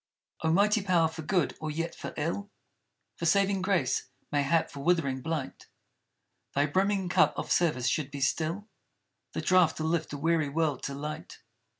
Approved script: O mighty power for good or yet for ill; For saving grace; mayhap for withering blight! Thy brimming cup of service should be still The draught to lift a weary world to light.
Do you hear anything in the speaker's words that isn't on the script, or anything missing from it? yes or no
no